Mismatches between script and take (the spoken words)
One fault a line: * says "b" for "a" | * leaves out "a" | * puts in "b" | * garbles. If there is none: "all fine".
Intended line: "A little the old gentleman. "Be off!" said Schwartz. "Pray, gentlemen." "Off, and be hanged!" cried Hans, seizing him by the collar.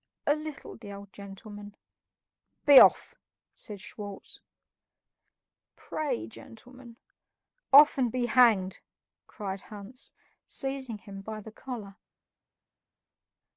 all fine